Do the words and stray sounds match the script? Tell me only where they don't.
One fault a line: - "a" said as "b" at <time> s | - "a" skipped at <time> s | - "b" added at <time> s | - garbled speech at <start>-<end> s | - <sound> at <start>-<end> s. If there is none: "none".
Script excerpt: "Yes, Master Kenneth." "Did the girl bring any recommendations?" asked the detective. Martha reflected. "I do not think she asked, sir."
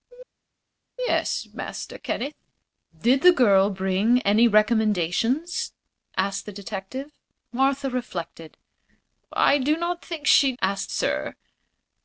none